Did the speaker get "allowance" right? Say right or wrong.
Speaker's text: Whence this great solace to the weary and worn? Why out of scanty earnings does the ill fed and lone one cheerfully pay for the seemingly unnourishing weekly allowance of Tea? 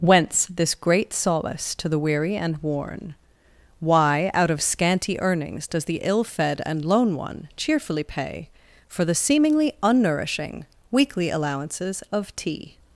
wrong